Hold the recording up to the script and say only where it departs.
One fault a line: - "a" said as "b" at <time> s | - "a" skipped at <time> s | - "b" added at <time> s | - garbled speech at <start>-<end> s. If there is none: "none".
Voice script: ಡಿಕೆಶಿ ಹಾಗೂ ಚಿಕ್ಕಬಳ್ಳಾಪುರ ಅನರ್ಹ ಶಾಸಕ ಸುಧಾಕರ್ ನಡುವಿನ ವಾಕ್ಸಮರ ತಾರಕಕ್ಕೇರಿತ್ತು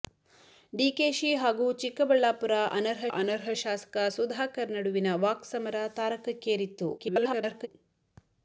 - "ಅನರ್ಹ" added at 3.1 s
- garbled speech at 7.0-7.7 s